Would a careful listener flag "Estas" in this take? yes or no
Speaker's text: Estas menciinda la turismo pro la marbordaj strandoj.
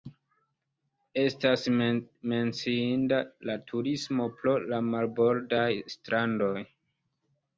no